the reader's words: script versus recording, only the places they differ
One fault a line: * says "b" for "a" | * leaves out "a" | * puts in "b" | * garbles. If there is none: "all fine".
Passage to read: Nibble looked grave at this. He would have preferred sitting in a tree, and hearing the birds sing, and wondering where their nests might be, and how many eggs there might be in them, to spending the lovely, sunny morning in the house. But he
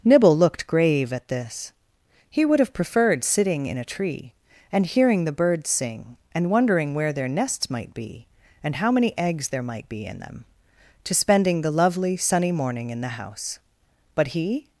all fine